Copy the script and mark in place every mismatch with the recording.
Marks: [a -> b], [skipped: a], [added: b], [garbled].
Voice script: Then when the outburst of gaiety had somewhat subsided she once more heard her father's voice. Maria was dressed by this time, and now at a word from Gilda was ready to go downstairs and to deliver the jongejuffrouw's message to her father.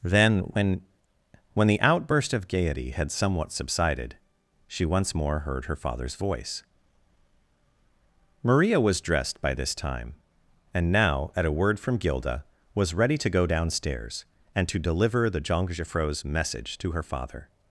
Then when [added: when] the outburst of gaiety had somewhat subsided she once more heard her father's voice. Maria was dressed by this time, and now at a word from Gilda was ready to go downstairs and to deliver the jongejuffrouw's message to her father.